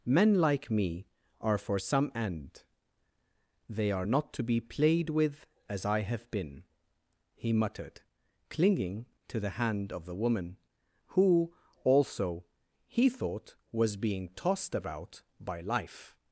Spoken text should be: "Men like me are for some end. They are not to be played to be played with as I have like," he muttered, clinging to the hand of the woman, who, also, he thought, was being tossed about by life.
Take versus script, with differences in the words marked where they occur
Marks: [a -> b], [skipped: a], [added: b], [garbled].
"Men like me are for some end. They are not to be played [skipped: to be played] with as I have [like," -> been] he muttered, clinging to the hand of the woman, who, also, he thought, was being tossed about by life.